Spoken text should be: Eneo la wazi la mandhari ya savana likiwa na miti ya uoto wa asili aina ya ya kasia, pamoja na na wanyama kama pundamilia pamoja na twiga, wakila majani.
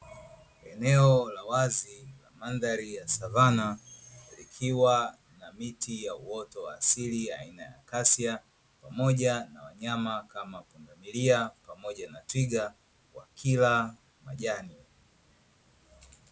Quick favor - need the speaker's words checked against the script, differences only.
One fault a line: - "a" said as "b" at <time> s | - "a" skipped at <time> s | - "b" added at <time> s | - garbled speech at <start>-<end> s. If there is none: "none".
- "ya" skipped at 7.8 s
- "na" skipped at 9.6 s